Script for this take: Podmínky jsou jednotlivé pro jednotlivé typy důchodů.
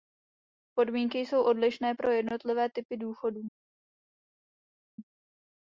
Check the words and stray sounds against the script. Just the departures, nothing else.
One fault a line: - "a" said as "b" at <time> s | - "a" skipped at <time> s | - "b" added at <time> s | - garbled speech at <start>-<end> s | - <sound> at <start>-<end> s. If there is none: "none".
- "jednotlivé" said as "odlišné" at 1.4 s